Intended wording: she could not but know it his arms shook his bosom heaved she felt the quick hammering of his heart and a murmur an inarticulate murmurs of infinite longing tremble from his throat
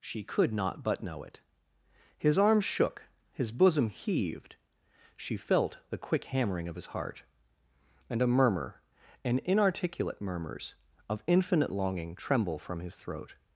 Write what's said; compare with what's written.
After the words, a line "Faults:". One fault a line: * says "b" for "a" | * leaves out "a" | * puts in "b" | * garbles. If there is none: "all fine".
she could not but know it his arms shook his bosom heaved she felt the quick hammering of his heart and a murmur an inarticulate murmurs of infinite longing tremble from his throat
Faults:
all fine